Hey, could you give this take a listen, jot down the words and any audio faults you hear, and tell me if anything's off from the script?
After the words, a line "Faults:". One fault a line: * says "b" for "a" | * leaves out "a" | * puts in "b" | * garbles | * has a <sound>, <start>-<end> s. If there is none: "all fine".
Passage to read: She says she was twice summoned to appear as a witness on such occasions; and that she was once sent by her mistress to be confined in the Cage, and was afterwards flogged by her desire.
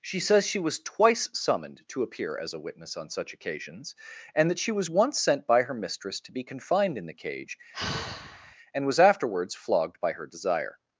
She says she was twice summoned to appear as a witness on such occasions; and that she was once sent by her mistress to be confined in the Cage, and was afterwards flogged by her desire.
Faults:
* has a sigh, 7.7-8.6 s